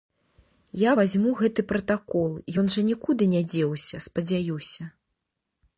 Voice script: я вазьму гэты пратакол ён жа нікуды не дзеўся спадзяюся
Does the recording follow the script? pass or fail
pass